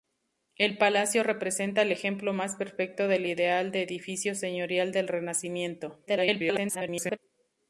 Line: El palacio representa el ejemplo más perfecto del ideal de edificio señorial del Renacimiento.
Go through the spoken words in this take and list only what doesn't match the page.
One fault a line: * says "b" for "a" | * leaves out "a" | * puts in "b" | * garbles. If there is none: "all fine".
* garbles